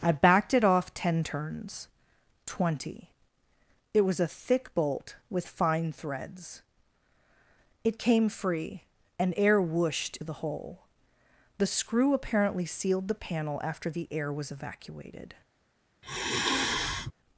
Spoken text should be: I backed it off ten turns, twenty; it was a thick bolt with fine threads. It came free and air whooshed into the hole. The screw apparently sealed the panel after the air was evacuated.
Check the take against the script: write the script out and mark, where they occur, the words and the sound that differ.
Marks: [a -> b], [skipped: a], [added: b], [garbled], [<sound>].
I backed it off ten turns, twenty; it was a thick bolt with fine threads. It came free and air whooshed [skipped: into] the hole. The screw apparently sealed the panel after the air was evacuated. [sigh]